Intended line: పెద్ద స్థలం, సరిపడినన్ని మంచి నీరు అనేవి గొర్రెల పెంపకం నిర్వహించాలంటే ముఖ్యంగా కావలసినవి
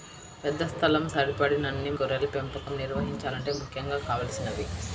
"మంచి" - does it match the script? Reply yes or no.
no